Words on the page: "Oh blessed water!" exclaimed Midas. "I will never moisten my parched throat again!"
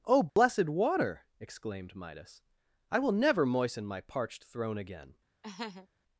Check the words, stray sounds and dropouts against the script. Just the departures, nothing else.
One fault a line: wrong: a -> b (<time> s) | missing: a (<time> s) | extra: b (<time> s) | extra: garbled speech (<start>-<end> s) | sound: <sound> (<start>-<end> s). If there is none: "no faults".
sound: dropout (0.3-0.4 s)
wrong: throat -> throne (4.4 s)
sound: laugh (5.4-5.9 s)